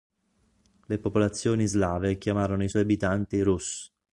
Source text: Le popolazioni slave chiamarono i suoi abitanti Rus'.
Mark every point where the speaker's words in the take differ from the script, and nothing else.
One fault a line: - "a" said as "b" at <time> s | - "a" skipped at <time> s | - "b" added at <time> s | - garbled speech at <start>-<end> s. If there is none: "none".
none